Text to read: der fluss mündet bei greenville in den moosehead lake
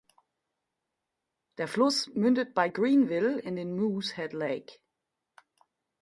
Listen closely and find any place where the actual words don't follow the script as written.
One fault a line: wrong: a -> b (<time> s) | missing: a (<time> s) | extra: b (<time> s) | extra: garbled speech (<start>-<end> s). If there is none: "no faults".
no faults